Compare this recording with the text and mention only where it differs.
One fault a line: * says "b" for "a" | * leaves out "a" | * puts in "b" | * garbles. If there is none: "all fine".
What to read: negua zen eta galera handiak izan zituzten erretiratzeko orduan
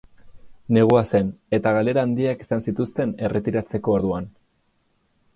all fine